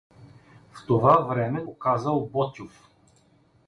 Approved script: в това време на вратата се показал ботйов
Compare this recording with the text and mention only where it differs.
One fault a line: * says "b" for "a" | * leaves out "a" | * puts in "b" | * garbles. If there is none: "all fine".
* leaves out "на вратата се"